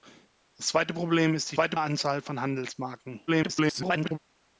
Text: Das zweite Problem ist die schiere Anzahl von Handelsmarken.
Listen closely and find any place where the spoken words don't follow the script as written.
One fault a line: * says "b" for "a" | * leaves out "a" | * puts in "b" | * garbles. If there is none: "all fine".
* says "zweite" for "schiere"
* garbles